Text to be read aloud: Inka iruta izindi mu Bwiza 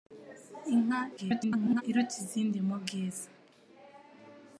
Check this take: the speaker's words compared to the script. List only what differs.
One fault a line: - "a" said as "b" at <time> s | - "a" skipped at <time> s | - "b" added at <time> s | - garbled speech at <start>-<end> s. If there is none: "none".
- garbled speech at 1.2-1.8 s